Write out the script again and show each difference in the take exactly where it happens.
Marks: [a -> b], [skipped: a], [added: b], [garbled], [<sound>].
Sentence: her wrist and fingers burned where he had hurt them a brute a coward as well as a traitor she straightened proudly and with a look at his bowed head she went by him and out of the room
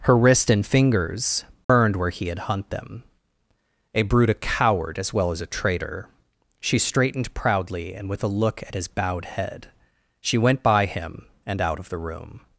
her wrist and fingers burned [dropout] where he had [hurt -> hunt] them a brute a coward as well as a traitor she straightened proudly and with a look at his bowed head she went by him and out of the room